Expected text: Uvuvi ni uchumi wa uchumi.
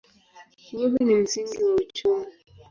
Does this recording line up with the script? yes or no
no